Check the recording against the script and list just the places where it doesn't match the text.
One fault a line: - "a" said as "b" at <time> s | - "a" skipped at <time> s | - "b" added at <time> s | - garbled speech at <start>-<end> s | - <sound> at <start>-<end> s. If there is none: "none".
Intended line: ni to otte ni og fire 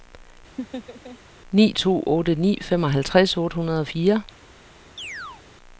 - laugh at 0.6-1.2 s
- "femoghalvtreds otte hundrede" added at 2.6 s
- chirp at 5.0-5.4 s